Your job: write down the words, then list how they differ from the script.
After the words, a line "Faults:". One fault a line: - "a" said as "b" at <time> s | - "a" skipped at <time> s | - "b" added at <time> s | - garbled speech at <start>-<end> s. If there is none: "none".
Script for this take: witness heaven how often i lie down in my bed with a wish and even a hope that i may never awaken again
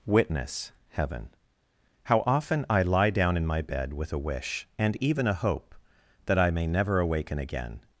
witness heaven how often i lie down in my bed with a wish and even a hope that i may never awaken again
Faults:
none